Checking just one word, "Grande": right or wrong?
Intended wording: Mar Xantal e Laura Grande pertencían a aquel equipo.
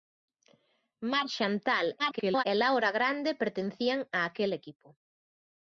right